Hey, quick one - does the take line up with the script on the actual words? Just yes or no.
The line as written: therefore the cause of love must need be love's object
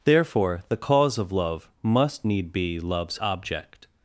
yes